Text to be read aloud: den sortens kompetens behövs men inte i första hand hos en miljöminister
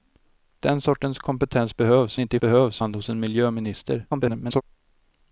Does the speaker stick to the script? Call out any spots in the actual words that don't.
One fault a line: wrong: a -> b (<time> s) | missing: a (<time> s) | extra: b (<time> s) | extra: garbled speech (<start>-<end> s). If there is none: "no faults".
missing: men (2.2 s)
wrong: första -> behövs (2.4 s)
extra: garbled speech (4.1-4.6 s)